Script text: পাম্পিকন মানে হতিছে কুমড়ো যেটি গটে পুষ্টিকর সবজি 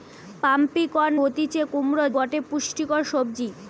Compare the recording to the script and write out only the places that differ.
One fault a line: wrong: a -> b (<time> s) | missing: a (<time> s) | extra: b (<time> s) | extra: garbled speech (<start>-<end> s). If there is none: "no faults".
missing: মানে (1.1 s)
missing: যেটি (2.1 s)